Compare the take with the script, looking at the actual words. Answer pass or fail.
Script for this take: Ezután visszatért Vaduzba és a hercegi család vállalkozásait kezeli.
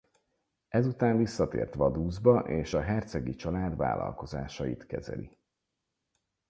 pass